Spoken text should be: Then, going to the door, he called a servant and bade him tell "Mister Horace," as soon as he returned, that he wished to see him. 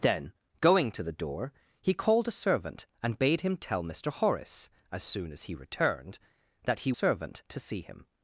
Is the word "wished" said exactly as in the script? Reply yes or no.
no